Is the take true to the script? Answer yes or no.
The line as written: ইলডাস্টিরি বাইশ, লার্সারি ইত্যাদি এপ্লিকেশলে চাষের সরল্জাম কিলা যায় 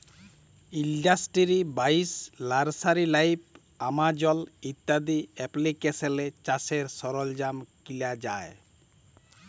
no